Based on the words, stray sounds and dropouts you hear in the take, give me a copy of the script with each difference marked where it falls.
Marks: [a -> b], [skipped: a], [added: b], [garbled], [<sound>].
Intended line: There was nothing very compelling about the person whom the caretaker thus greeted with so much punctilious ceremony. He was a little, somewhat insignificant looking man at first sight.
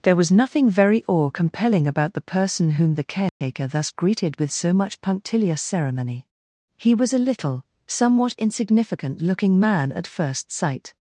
There was nothing very [added: awe] compelling about the person whom the caretaker [dropout] thus greeted with so much punctilious ceremony. He was a little, somewhat insignificant looking man at first sight.